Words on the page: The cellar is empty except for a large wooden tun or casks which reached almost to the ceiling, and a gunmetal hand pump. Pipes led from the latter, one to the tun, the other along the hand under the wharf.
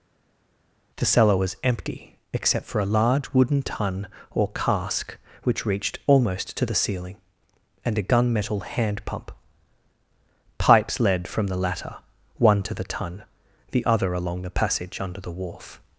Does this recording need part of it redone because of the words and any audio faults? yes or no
yes